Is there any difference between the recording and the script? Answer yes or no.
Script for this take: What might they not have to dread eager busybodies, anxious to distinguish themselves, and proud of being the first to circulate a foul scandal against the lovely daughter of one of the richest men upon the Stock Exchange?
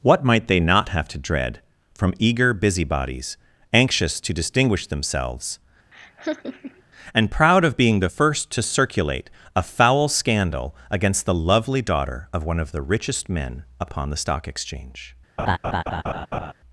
yes